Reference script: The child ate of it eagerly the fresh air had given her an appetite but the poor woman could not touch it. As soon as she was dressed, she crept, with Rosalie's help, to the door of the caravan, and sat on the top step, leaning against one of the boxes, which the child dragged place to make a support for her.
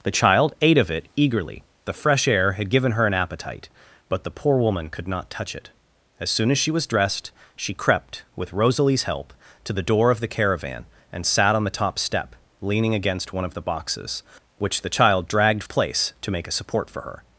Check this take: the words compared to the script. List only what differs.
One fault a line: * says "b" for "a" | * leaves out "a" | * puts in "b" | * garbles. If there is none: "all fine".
all fine